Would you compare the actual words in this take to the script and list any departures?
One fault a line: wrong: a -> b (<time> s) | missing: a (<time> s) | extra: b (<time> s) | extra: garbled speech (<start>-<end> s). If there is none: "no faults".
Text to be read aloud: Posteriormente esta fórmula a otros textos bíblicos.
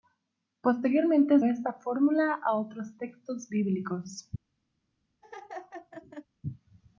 no faults